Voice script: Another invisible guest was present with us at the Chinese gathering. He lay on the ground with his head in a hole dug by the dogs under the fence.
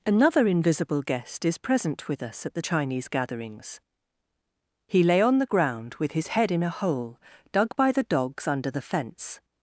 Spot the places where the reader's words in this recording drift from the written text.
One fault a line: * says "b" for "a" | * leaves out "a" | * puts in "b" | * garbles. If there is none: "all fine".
* says "is" for "was"
* says "gatherings" for "gathering"